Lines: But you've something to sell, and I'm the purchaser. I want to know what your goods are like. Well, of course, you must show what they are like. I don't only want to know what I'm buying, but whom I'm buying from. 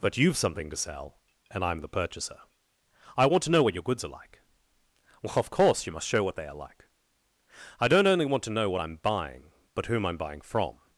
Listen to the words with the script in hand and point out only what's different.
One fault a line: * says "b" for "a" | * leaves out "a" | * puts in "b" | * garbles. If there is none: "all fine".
all fine